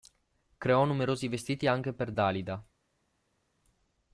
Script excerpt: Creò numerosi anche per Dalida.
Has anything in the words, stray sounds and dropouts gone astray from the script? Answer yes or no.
yes